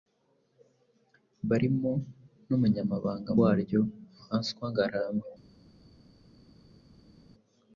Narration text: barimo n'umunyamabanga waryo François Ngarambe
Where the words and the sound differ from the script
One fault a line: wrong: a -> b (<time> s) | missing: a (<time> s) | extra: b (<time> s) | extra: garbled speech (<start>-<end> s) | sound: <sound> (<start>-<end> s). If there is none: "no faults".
no faults